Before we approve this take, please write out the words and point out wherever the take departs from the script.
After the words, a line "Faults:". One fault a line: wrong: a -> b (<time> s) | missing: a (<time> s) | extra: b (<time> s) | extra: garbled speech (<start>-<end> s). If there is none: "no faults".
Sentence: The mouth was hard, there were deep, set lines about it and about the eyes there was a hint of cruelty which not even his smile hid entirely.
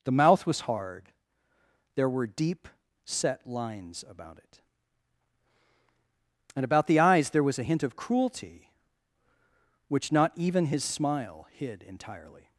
The mouth was hard, there were deep, set lines about it and about the eyes there was a hint of cruelty which not even his smile hid entirely.
Faults:
no faults